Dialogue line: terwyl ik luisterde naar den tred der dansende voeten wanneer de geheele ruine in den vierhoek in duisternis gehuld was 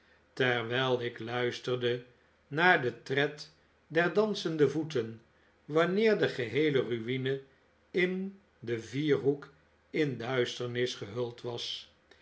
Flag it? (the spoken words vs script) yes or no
no